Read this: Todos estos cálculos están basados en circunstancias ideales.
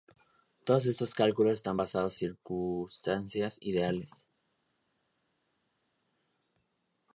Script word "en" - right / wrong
wrong